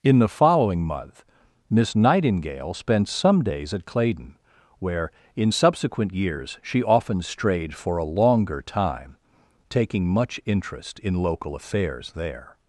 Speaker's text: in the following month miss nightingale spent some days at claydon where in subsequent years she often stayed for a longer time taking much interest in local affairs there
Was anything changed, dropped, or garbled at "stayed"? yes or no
yes